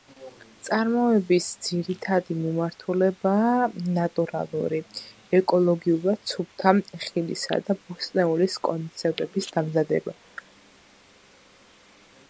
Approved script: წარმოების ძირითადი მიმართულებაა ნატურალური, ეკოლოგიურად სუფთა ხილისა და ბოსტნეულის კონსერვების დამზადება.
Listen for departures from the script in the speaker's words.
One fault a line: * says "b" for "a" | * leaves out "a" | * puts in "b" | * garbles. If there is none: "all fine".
all fine